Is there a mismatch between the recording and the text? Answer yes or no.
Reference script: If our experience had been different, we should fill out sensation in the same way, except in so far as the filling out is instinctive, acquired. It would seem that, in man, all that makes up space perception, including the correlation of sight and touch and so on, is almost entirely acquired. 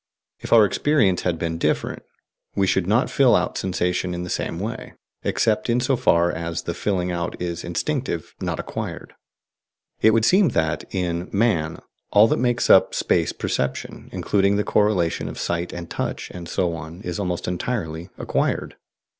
yes